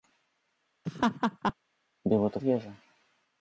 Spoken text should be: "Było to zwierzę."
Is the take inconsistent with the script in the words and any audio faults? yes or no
yes